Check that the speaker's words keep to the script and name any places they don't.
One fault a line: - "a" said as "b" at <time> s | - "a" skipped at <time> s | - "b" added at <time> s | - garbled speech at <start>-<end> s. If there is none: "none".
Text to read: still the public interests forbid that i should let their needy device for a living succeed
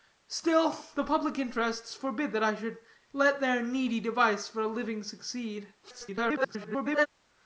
- garbled speech at 5.8-7.1 s